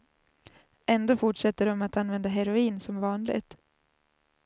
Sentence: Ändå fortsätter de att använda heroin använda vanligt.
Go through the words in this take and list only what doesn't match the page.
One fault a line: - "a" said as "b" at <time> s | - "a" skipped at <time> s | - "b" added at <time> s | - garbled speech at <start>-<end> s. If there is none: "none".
- "använda" said as "som" at 2.8 s